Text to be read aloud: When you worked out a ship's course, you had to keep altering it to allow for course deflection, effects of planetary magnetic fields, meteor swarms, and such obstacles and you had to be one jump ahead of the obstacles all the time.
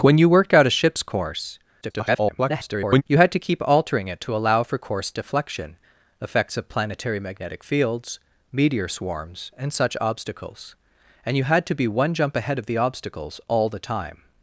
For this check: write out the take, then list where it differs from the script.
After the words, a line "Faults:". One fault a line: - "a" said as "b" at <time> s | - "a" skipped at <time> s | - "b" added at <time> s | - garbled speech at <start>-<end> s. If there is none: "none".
When you worked out a ship's course, [garbled] you had to keep altering it to allow for course deflection, effects of planetary magnetic fields, meteor swarms, and such obstacles and you had to be one jump ahead of the obstacles all the time.
Faults:
- garbled speech at 1.8-3.0 s